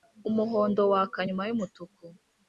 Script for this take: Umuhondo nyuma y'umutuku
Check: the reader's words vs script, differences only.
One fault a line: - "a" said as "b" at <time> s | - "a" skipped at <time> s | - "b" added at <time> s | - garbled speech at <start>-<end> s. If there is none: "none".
- "waka" added at 0.9 s